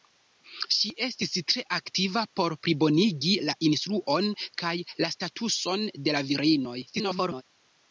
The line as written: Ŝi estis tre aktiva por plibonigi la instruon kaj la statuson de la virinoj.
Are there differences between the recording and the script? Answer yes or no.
yes